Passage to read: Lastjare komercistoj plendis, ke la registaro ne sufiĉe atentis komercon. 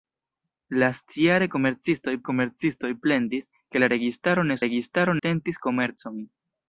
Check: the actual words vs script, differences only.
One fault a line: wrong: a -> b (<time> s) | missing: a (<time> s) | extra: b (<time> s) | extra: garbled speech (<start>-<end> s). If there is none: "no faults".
extra: komercistoj (2.3 s)
wrong: sufiĉe -> registaro (4.7 s)